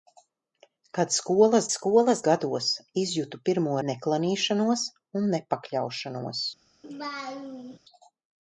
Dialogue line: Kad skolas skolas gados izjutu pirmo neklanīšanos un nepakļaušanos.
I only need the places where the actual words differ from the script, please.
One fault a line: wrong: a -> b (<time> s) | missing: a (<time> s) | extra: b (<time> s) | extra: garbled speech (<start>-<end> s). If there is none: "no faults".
no faults